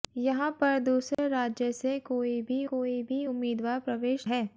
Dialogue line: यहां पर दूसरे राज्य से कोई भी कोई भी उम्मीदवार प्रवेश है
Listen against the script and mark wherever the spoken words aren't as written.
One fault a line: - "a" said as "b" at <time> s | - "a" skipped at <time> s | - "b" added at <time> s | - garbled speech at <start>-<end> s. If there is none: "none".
none